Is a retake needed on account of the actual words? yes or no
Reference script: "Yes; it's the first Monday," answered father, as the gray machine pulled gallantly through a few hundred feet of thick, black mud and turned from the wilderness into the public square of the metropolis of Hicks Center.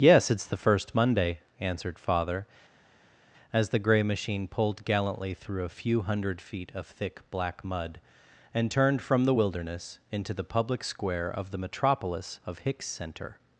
no